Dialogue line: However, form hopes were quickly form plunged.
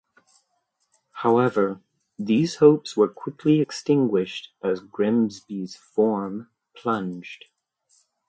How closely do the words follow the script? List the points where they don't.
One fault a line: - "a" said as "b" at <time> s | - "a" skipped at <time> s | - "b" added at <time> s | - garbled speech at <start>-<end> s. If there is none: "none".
- "form" said as "these" at 2.2 s
- "extinguished as Grimsby's" added at 3.6 s